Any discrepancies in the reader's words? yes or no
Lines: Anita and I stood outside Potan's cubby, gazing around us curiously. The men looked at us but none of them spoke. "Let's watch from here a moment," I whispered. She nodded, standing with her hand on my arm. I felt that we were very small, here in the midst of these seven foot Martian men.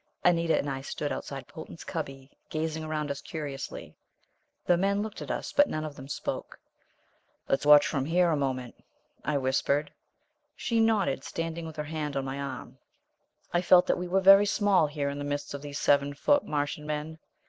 no